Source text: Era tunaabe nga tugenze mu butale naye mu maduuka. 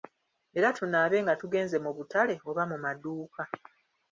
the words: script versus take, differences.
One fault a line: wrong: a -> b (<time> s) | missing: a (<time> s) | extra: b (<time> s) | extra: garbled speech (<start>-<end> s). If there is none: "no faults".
wrong: naye -> oba (2.5 s)